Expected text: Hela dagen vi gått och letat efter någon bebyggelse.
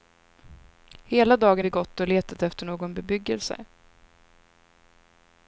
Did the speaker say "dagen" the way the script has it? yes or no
yes